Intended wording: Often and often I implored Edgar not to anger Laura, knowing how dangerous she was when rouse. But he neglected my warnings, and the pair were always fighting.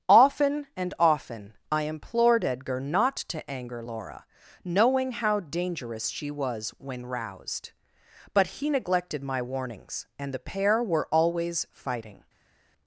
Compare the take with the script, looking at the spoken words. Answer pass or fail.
fail